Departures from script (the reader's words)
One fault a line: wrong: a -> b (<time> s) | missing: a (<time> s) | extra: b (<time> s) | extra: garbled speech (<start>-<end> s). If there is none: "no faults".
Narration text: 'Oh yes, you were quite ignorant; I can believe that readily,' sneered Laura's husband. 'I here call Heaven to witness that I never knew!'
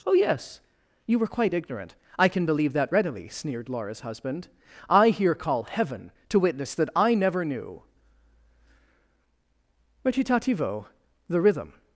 extra: Recitativo the rhythm (10.0 s)